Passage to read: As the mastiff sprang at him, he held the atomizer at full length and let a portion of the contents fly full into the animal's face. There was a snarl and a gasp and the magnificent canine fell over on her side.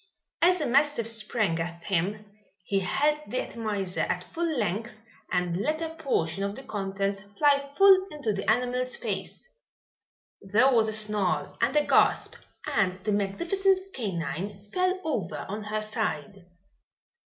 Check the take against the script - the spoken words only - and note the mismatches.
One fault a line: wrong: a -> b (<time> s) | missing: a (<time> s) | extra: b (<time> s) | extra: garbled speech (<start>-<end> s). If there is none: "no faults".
no faults